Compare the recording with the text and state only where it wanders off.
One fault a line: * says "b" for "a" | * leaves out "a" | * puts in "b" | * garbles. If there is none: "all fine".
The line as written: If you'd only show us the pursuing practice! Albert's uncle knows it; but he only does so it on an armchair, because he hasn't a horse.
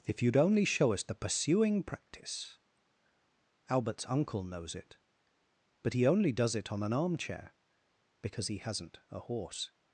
* leaves out "so"